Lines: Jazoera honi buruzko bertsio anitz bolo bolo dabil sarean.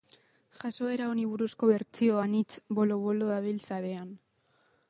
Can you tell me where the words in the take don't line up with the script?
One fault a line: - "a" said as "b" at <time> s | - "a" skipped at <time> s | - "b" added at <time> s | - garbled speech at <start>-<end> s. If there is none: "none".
none